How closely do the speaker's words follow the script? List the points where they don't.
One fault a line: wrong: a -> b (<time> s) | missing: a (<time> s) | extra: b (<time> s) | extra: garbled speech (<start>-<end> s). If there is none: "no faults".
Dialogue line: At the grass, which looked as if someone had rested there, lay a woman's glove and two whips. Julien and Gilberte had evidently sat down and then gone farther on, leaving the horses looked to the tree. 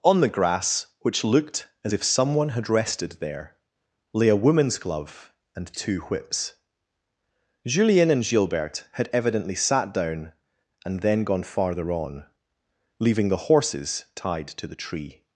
wrong: At -> On (0.0 s)
wrong: looked -> tied (14.1 s)